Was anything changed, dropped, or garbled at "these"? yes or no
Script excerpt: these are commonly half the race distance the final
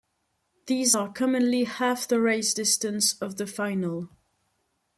no